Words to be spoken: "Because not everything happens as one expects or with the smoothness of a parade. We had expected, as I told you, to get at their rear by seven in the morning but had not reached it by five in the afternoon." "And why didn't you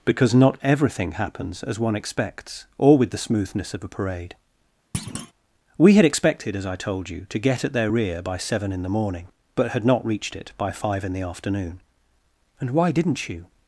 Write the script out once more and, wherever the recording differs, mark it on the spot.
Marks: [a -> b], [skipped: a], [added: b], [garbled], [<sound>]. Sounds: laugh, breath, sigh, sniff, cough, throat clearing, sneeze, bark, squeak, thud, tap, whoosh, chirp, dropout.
"Because not everything happens as one expects or with the smoothness of a parade. [thud] We had expected, as I told you, to get at their rear by seven in the morning but had not reached it by five in the afternoon." "And why didn't you